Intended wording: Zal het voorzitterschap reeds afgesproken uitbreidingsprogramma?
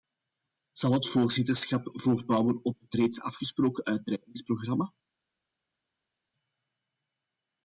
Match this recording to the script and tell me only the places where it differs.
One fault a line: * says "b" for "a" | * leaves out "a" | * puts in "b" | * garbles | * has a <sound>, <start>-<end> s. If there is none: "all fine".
* puts in "voortbouwen op het"